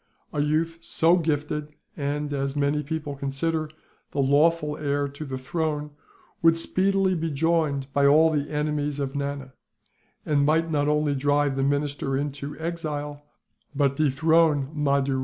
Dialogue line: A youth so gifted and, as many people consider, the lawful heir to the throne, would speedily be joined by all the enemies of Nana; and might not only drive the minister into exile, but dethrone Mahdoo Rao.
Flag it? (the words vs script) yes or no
no